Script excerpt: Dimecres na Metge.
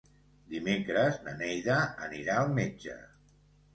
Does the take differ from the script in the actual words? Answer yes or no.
yes